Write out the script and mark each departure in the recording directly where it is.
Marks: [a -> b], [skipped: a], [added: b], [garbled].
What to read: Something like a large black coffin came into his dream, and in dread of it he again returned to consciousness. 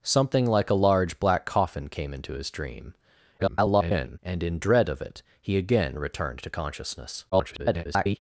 Something like a large black coffin came into his dream, [garbled] and in dread of it he again returned to consciousness. [garbled]